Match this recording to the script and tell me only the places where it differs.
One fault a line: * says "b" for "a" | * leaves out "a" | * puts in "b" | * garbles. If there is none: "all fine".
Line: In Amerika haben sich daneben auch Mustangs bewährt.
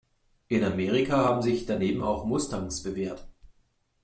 all fine